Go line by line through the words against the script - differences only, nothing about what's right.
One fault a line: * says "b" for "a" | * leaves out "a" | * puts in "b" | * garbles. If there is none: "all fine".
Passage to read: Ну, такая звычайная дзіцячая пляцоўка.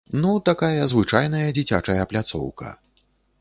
all fine